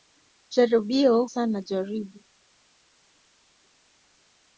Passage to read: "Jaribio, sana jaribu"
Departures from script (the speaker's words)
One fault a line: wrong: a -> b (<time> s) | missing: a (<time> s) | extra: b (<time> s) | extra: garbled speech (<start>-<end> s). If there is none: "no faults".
no faults